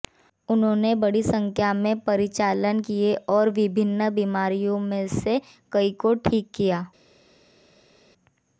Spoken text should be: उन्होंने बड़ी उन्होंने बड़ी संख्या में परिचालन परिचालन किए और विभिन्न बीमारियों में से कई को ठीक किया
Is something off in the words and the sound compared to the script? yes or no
yes